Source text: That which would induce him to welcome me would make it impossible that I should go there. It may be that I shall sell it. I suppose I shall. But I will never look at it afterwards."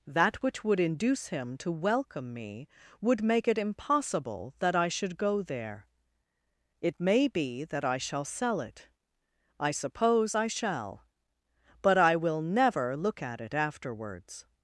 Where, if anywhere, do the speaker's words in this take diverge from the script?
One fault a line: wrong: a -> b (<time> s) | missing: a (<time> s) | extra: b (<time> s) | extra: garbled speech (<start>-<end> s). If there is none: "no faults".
no faults